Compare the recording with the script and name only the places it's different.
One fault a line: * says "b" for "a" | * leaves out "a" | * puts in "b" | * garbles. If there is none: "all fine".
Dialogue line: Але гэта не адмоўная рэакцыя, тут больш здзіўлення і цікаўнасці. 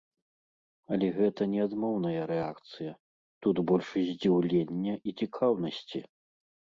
all fine